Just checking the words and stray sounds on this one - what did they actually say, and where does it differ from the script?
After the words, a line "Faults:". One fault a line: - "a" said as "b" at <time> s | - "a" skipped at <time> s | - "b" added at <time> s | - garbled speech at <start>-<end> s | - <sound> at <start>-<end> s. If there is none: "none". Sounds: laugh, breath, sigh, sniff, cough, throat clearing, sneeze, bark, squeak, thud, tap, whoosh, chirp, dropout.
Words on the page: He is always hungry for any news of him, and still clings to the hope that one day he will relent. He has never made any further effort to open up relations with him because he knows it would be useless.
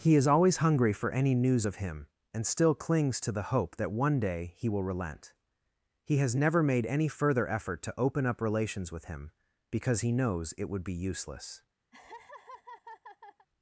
He is always hungry for any news of him, and still clings to the hope that one day he will relent. He has never made any further effort to open up relations with him because he knows it would be useless.
Faults:
- laugh at 11.9-13.5 s